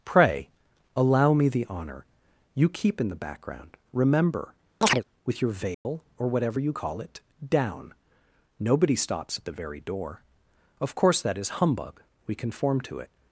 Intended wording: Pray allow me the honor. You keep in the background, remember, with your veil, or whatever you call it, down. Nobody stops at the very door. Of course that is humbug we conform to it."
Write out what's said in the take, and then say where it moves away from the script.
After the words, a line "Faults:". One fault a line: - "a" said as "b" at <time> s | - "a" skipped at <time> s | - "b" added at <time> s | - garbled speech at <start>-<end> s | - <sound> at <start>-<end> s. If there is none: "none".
Pray allow me the honor. You keep in the background, remember, with your veil, or whatever you call it, down. Nobody stops at the very door. Of course that is humbug we conform to it."
Faults:
- chirp at 4.8-5.0 s
- dropout at 5.7-5.9 s